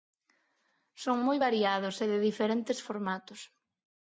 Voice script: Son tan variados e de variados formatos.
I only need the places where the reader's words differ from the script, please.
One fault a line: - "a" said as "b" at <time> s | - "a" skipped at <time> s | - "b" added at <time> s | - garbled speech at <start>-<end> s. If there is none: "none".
- "tan" said as "moi" at 1.3 s
- "variados" said as "diferentes" at 2.3 s